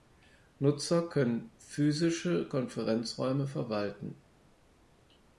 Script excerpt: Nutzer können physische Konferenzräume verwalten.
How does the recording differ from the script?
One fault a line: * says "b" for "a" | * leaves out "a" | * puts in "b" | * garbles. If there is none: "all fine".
all fine